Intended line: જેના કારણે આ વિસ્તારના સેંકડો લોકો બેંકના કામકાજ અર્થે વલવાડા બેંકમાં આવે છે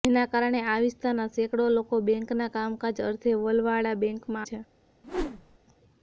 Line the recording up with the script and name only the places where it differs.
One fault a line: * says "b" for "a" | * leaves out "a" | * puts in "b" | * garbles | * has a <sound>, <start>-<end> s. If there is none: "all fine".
* leaves out "આવે"
* has a whoosh, 5.0-5.6 s